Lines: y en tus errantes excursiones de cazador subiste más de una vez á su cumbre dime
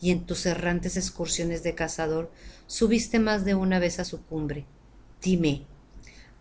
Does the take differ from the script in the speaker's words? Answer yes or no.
no